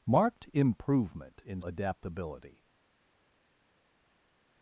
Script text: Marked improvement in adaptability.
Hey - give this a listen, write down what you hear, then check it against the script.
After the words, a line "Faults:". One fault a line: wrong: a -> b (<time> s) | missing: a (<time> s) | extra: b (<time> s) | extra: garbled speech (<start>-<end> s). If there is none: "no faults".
Marked improvement in adaptability.
Faults:
no faults